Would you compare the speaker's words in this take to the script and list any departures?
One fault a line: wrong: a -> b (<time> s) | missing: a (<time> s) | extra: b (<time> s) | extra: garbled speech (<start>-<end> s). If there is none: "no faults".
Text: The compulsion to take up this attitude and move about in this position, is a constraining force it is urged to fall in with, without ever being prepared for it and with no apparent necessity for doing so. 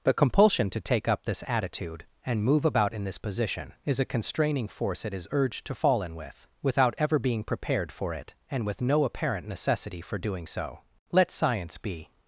extra: Let science be (11.1 s)